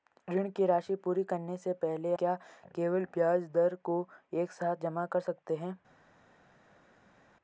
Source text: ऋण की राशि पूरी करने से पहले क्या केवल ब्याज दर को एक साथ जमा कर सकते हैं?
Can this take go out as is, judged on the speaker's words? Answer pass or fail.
pass